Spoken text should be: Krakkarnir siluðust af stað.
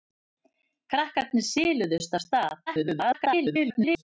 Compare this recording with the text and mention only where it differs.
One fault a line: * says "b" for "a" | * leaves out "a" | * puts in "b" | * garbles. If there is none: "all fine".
* garbles